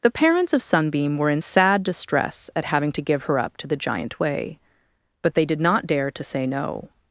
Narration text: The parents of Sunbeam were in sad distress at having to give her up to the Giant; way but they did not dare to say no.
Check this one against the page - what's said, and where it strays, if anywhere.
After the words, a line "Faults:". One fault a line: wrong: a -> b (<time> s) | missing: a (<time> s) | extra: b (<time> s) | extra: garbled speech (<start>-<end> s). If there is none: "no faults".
The parents of Sunbeam were in sad distress at having to give her up to the Giant; way but they did not dare to say no.
Faults:
no faults